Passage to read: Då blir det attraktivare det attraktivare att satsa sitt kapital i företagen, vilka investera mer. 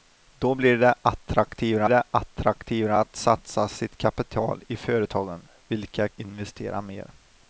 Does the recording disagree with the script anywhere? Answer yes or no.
no